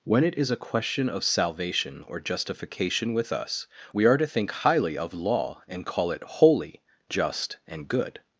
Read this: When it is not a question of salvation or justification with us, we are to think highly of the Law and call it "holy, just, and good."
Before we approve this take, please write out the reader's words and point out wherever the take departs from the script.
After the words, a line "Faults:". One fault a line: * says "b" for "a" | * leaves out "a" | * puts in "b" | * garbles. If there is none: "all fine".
When it is a question of salvation or justification with us, we are to think highly of Law and call it "holy, just, and good."
Faults:
* leaves out "not"
* leaves out "the"